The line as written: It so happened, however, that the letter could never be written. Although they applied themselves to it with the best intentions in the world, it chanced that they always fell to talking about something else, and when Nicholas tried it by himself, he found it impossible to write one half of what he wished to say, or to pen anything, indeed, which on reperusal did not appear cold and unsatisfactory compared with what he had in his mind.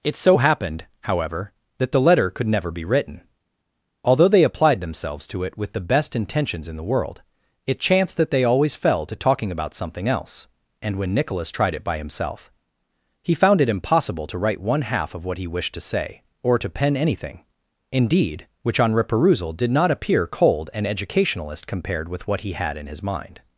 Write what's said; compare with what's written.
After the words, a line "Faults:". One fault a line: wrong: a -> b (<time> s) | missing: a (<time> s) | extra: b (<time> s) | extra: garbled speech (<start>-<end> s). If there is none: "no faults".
It so happened, however, that the letter could never be written. Although they applied themselves to it with the best intentions in the world, it chanced that they always fell to talking about something else, and when Nicholas tried it by himself, he found it impossible to write one half of what he wished to say, or to pen anything, indeed, which on reperusal did not appear cold and educationalist compared with what he had in his mind.
Faults:
wrong: unsatisfactory -> educationalist (20.9 s)